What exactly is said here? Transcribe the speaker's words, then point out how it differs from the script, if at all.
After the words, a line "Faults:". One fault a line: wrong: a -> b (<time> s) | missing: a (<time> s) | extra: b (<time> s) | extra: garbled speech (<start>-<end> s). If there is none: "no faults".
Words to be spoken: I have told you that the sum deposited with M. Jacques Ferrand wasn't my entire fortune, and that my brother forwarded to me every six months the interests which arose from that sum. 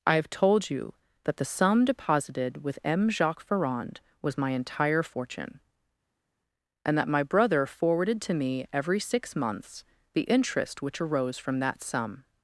I have told you that the sum deposited with M. Jacques Ferrand was my entire fortune, and that my brother forwarded to me every six months the interest which arose from that sum.
Faults:
wrong: wasn't -> was (4.2 s)
wrong: interests -> interest (10.2 s)